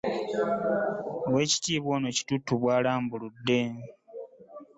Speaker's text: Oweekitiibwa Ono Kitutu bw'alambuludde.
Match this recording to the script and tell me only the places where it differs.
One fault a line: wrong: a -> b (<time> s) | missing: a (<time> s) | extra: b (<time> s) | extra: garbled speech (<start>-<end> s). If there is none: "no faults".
no faults